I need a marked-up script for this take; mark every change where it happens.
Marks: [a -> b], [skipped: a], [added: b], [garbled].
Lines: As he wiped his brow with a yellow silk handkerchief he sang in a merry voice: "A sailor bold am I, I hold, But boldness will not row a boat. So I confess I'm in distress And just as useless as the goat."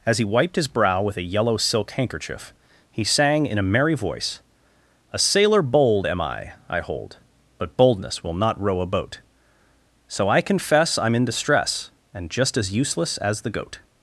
As he wiped his brow with a yellow silk handkerchief he sang in a merry voice: "A sailor bold am I, I hold, But boldness will not row a boat. So I confess I'm in distress And just as useless as the goat."